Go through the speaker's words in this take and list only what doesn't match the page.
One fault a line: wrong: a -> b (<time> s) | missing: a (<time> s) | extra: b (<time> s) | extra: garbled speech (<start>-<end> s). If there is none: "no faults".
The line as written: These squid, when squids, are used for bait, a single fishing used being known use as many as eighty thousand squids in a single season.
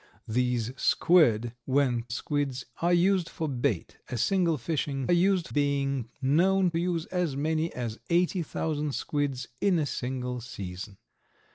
no faults